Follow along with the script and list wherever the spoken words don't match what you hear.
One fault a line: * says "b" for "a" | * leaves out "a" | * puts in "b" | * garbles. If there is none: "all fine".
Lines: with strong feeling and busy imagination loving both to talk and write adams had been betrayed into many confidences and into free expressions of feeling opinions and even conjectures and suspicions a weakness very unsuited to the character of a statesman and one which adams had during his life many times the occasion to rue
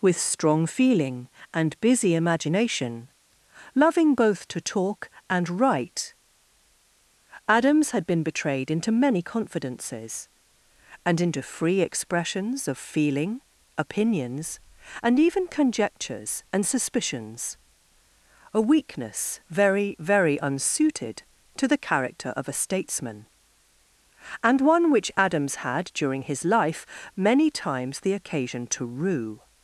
* puts in "very"